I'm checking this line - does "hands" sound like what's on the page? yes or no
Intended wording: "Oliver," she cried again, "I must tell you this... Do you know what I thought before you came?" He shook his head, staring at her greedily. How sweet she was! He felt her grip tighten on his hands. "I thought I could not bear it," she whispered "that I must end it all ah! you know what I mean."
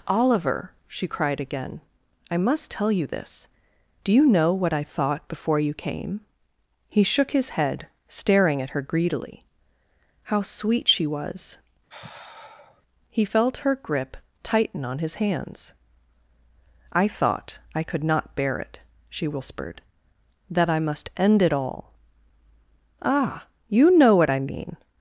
yes